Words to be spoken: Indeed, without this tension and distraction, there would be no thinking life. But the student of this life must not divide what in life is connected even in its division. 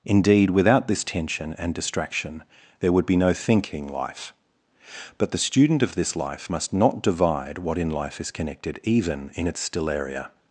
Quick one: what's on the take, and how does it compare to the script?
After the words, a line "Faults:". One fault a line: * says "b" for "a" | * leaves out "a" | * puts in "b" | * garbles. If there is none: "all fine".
Indeed, without this tension and distraction, there would be no thinking life. But the student of this life must not divide what in life is connected even in its stellaria.
Faults:
* says "stellaria" for "division"